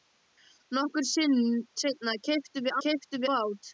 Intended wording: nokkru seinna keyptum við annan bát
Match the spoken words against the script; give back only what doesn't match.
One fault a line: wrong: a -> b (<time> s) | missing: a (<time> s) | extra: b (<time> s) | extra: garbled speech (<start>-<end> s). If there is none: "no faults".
wrong: annan -> keyptum (2.8 s)